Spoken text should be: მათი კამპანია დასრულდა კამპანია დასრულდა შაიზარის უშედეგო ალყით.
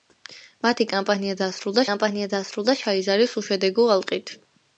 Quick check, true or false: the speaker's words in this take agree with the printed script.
true